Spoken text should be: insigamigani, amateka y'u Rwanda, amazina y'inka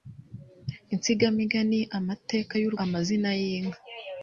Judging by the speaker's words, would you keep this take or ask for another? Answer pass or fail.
fail